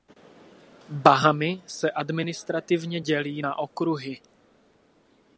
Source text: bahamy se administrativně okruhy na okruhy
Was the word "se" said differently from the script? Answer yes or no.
no